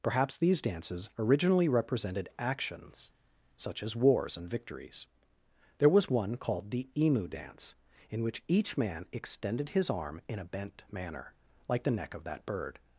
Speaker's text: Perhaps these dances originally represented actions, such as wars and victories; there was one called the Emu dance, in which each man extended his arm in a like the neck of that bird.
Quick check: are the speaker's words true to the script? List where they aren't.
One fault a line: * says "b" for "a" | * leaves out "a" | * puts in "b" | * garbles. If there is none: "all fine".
* puts in "bent manner"